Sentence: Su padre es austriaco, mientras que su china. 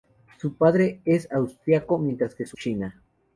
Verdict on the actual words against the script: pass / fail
pass